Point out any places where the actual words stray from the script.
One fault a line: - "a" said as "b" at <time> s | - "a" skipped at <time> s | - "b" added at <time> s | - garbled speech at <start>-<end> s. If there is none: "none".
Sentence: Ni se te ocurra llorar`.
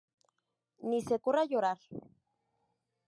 - "te" skipped at 1.2 s